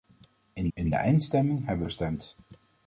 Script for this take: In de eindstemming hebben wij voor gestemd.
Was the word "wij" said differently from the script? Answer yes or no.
yes